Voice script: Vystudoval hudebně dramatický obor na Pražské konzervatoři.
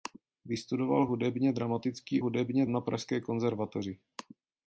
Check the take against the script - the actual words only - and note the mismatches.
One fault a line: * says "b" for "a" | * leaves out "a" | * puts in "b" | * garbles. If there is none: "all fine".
* says "hudebně" for "obor"